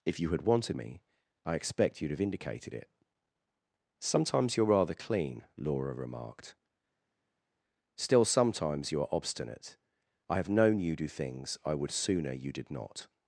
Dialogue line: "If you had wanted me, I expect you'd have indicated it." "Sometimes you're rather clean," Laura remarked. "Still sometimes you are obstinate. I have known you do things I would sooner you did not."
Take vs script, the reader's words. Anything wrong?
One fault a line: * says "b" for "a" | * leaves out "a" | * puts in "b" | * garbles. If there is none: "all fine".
all fine